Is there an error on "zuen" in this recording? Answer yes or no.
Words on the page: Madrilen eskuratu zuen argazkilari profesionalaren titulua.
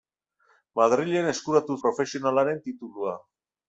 yes